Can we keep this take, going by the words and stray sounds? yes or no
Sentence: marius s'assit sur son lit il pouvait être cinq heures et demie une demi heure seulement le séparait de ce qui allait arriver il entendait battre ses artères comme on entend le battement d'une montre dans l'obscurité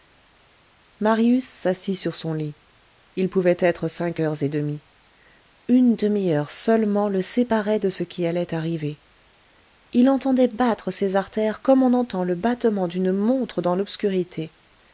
yes